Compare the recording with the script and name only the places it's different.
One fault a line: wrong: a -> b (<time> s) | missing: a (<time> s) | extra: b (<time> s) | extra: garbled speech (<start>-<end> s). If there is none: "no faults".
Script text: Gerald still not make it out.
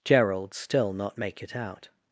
no faults